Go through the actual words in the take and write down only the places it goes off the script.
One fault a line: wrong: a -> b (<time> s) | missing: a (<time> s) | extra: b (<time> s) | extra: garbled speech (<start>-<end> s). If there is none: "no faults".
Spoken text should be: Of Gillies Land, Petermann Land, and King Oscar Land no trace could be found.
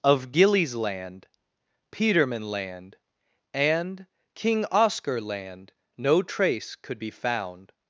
no faults